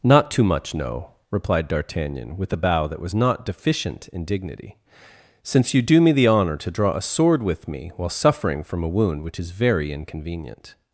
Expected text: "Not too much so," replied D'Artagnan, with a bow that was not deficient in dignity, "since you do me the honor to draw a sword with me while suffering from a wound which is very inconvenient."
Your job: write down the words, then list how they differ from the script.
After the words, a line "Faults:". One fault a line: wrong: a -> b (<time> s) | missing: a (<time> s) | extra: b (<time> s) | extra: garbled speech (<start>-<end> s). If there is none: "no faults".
"Not too much no," replied D'Artagnan, with a bow that was not deficient in dignity, "since you do me the honor to draw a sword with me while suffering from a wound which is very inconvenient."
Faults:
wrong: so -> no (0.7 s)